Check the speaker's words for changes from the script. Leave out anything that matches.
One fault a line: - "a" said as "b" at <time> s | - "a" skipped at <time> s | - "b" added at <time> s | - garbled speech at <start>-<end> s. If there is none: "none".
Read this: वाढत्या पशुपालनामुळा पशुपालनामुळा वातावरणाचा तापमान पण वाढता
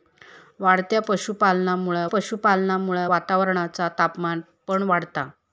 none